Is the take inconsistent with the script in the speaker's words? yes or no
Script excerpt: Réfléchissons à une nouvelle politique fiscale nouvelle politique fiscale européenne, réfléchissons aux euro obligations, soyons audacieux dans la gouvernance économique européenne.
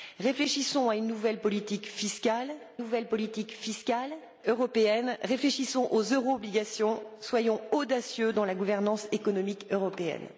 no